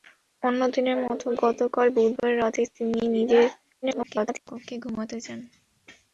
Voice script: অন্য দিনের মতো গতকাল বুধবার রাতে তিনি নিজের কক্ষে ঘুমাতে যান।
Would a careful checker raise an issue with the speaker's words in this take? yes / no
yes